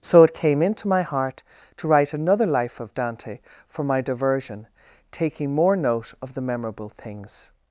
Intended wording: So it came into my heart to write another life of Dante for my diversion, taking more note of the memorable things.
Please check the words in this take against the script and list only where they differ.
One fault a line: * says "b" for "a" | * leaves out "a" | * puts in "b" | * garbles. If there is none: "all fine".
all fine